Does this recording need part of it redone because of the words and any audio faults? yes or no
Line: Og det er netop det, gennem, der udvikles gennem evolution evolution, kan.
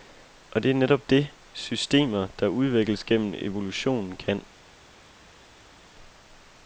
yes